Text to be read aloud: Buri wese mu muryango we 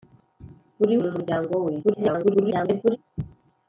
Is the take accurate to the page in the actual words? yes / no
no